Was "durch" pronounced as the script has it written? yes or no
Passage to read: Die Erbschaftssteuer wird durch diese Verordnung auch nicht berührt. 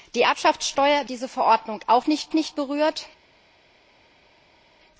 no